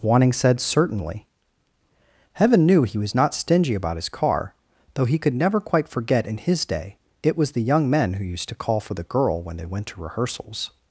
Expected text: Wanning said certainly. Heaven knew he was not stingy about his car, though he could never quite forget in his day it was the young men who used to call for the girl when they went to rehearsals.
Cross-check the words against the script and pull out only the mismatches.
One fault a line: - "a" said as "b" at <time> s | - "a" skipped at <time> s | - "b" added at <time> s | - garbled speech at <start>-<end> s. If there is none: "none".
none